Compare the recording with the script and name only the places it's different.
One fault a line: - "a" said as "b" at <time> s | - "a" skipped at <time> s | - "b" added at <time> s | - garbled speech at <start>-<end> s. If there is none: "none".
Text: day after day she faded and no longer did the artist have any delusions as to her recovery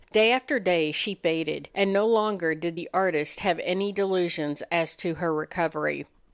none